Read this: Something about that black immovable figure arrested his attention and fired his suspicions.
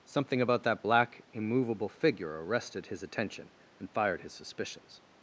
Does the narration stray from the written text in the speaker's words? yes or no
no